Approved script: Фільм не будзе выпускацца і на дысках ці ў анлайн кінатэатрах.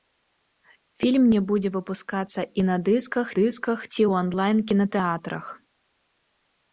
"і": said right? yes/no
yes